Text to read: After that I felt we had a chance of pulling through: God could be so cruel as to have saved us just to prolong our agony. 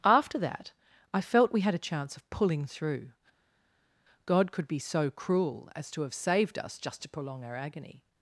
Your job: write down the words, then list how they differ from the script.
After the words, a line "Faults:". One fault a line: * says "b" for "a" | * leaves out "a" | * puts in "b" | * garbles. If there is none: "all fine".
After that I felt we had a chance of pulling through: God could be so cruel as to have saved us just to prolong our agony.
Faults:
all fine